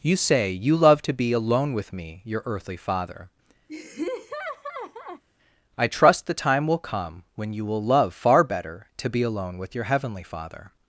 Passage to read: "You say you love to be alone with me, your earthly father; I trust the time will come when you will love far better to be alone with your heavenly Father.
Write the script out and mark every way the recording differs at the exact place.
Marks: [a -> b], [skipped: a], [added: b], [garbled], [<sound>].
"You say you love to be alone with me, your earthly father; [laugh] I trust the time will come when you will love far better to be alone with your heavenly Father.